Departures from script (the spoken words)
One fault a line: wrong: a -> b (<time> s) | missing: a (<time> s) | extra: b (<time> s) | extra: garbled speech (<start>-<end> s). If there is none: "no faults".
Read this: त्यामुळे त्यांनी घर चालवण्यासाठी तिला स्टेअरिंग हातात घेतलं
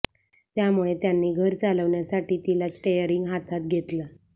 no faults